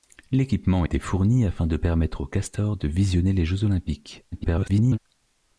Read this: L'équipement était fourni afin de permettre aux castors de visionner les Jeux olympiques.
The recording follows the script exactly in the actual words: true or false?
false